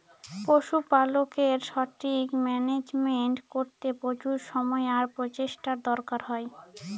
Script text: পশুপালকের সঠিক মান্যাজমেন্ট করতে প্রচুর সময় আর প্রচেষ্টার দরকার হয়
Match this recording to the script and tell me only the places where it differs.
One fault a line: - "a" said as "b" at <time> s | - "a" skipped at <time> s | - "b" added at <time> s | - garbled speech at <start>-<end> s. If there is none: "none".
none